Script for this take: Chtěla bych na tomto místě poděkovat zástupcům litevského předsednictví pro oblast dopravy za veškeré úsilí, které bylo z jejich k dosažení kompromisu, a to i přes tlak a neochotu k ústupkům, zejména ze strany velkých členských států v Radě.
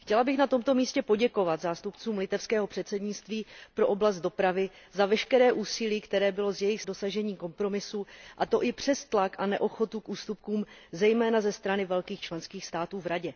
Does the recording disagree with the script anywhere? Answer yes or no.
no